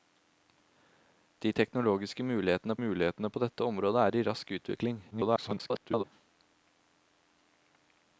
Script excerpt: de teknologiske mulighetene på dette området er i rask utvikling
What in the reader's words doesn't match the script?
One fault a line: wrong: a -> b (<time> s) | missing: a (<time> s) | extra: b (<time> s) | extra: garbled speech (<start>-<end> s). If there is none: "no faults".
extra: mulighetene (2.8 s)
extra: garbled speech (5.1-6.0 s)